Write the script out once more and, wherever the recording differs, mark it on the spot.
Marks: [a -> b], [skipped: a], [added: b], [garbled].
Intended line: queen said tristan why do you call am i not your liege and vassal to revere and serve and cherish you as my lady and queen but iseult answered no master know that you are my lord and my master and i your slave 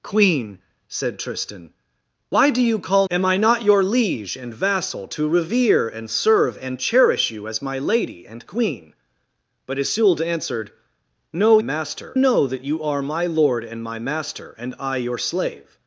queen said tristan why do you call am i not your liege and vassal to revere and serve and cherish you as my lady and queen but iseult answered no master know that you are my lord and my master and i your slave